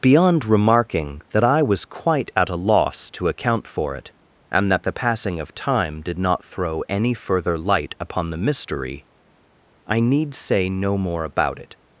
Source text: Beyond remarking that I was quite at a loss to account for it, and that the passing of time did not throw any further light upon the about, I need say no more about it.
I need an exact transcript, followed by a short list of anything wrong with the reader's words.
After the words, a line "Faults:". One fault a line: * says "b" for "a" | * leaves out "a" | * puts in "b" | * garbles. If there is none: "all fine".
Beyond remarking that I was quite at a loss to account for it, and that the passing of time did not throw any further light upon the mystery, I need say no more about it.
Faults:
* says "mystery" for "about"